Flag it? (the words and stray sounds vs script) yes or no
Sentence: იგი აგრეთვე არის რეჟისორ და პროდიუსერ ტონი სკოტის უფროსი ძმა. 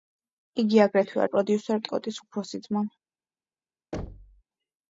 yes